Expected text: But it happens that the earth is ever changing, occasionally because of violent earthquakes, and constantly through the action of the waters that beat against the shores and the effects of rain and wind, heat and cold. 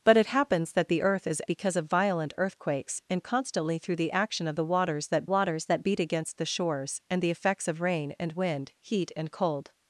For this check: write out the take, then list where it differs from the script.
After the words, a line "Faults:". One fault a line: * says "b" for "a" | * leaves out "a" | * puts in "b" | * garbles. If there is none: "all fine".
But it happens that the earth is because of violent earthquakes, and constantly through the action of the waters that waters that beat against the shores and the effects of rain and wind, heat and cold.
Faults:
* leaves out "ever changing occasionally"
* puts in "waters that"